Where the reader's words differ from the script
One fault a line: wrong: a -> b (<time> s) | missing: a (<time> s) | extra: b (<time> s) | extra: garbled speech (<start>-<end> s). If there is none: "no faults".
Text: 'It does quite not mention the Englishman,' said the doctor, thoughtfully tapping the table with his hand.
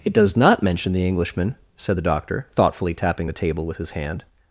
missing: quite (0.3 s)